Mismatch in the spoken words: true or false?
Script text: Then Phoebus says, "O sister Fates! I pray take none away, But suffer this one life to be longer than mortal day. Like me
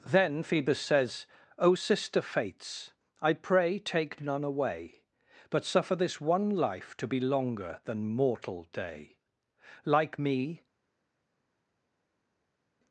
false